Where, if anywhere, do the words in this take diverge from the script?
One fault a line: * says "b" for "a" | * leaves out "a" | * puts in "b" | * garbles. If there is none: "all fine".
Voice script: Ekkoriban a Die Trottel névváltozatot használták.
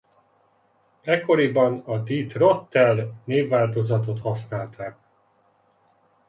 all fine